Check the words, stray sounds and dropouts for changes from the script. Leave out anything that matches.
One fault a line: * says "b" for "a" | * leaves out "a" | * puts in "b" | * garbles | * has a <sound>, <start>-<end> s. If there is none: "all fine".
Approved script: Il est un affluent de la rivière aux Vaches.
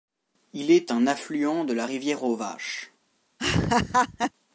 * has a laugh, 3.4-4.3 s